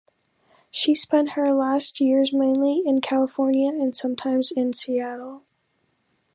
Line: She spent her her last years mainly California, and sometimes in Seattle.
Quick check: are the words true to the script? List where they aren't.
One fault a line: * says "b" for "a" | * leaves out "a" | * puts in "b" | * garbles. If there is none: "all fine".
* leaves out "her"
* puts in "in"